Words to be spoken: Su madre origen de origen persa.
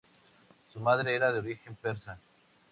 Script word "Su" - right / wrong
right